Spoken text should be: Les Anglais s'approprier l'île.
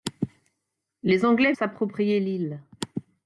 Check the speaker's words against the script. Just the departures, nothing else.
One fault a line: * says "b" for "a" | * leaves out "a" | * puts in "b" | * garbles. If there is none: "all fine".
all fine